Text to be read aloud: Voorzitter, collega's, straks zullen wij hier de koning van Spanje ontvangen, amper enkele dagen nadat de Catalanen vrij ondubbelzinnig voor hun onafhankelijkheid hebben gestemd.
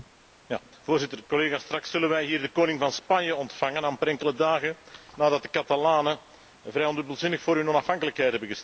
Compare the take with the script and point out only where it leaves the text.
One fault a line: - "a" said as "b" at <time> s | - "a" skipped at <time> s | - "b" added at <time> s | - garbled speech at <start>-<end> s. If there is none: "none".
none